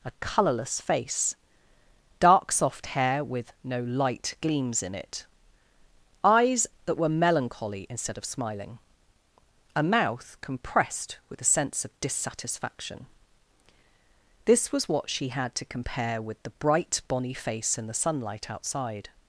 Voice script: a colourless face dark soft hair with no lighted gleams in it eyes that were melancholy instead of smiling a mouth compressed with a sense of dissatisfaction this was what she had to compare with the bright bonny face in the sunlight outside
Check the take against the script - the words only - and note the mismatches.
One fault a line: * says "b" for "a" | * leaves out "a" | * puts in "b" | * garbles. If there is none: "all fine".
* says "light" for "lighted"